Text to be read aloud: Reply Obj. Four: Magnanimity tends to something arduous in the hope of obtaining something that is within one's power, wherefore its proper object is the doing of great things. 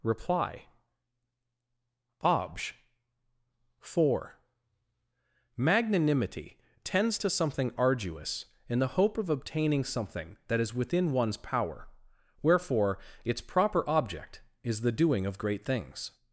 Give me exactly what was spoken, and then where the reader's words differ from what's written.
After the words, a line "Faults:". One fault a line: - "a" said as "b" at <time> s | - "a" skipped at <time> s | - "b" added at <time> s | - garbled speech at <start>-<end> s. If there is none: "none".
Reply Obj. Four: Magnanimity tends to something arduous in the hope of obtaining something that is within one's power, wherefore its proper object is the doing of great things.
Faults:
none